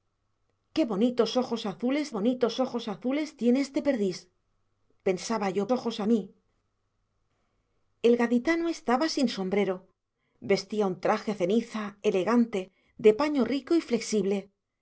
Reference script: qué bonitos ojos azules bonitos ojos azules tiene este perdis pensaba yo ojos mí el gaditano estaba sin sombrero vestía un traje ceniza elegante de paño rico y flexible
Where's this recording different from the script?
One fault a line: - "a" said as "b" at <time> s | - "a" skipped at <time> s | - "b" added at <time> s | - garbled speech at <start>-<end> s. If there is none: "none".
none